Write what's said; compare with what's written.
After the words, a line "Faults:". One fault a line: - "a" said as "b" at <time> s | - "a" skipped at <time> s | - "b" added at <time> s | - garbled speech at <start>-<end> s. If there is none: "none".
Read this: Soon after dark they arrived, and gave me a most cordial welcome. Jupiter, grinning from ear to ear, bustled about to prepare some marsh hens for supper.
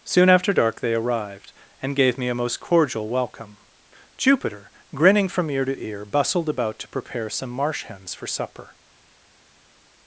Soon after dark they arrived, and gave me a most cordial welcome. Jupiter, grinning from ear to ear, bustled about to prepare some marsh hens for supper.
Faults:
none